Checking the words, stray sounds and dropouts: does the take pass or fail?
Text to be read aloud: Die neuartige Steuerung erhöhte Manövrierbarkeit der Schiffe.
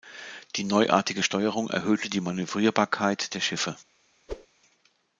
fail